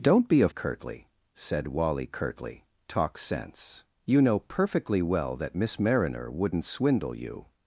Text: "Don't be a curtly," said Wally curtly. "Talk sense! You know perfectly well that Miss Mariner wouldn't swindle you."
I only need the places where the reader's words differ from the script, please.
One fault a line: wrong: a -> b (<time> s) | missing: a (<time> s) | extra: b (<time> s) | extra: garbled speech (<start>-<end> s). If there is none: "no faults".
no faults